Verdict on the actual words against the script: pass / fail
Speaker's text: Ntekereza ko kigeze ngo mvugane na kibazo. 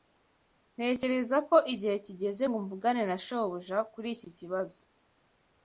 fail